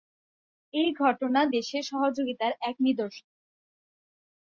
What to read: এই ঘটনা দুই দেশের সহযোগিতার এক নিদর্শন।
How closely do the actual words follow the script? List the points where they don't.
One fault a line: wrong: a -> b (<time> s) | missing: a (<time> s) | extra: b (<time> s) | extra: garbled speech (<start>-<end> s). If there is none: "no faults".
missing: দুই (1.4 s)